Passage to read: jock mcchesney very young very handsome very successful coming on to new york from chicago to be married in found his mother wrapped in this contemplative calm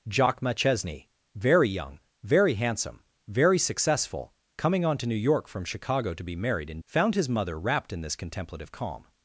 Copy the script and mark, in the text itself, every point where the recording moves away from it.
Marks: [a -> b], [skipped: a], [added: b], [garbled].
jock mcchesney very young very handsome very successful coming on to new york from chicago to be married in found his mother wrapped in this contemplative calm